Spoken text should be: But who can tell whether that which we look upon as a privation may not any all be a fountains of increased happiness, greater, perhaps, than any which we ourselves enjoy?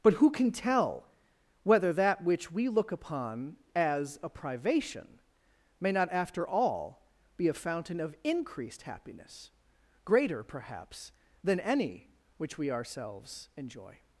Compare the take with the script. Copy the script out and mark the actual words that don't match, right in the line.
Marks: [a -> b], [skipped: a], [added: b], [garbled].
But who can tell whether that which we look upon as a privation may not [any -> after] all be a [fountains -> fountain] of increased happiness, greater, perhaps, than any which we ourselves enjoy?